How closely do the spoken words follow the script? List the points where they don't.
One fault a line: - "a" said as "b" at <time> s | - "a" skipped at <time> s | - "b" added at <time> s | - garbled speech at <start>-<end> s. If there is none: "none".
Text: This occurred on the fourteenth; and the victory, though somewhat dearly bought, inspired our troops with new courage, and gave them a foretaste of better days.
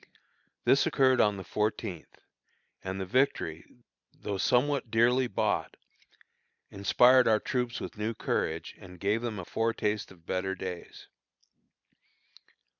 none